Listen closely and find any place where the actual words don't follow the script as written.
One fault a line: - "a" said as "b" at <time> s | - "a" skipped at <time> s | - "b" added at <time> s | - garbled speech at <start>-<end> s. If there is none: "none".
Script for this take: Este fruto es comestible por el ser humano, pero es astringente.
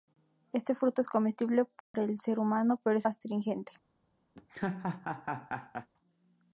none